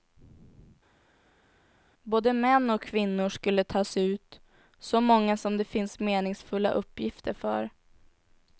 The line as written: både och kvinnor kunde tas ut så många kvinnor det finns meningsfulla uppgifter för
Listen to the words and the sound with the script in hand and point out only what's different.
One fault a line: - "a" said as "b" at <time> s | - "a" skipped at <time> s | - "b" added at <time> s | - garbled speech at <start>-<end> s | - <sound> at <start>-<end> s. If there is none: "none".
- "män" added at 2.3 s
- "kunde" said as "skulle" at 3.3 s
- "kvinnor" said as "som" at 5.4 s